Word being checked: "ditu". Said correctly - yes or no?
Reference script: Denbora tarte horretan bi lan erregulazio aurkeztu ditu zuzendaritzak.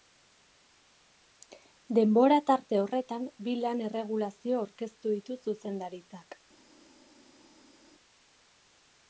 yes